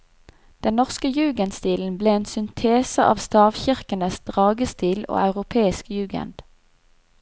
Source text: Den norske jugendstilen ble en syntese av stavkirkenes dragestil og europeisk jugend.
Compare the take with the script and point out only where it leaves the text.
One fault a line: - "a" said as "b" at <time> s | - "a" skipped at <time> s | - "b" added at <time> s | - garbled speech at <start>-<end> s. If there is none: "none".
none